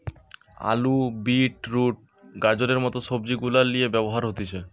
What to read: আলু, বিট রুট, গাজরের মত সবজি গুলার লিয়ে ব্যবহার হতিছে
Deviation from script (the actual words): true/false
false